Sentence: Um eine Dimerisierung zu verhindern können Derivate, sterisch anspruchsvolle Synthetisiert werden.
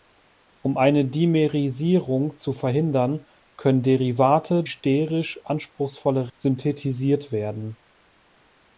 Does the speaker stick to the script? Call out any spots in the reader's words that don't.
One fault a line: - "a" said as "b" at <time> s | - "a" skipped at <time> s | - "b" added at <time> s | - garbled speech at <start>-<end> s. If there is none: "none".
none